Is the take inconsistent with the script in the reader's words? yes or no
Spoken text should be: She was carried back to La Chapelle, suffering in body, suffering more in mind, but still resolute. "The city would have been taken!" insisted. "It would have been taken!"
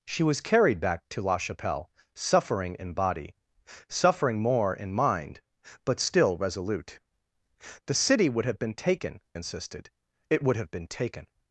no